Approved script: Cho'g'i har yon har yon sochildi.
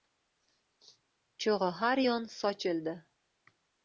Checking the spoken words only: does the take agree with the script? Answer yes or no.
no